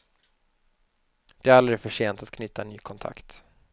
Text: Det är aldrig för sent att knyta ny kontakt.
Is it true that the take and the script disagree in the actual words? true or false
false